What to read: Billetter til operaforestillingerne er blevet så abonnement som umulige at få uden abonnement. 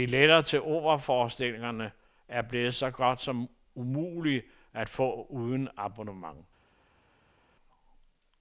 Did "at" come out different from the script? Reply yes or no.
no